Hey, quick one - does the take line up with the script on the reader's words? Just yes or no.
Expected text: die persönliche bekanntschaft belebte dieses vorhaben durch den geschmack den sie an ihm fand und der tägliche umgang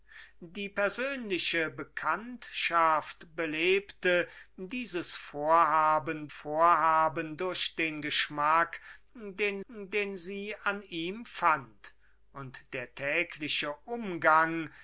no